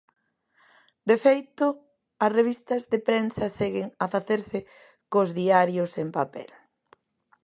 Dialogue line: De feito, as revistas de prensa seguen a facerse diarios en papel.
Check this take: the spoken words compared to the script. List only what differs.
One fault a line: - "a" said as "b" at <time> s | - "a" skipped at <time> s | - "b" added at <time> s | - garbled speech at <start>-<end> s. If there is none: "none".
- "cos" added at 5.1 s